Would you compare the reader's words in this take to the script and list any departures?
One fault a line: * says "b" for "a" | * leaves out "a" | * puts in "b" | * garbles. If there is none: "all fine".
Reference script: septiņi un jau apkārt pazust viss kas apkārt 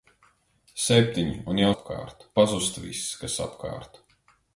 all fine